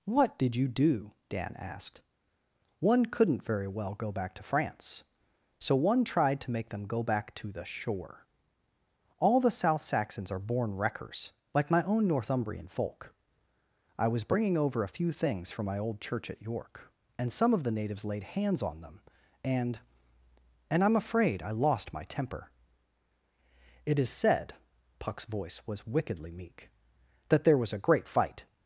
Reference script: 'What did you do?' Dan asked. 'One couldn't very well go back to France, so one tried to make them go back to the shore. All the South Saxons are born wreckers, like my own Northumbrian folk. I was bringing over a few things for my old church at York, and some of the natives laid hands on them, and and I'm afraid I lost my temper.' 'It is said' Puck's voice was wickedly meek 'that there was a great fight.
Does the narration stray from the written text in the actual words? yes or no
yes